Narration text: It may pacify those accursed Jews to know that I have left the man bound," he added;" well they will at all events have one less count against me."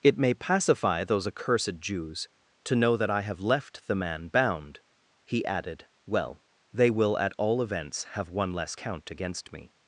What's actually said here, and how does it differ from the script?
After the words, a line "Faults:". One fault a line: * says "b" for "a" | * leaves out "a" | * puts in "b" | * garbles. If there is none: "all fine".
It may pacify those accursed Jews to know that I have left the man bound," he added;" well they will at all events have one less count against me."
Faults:
all fine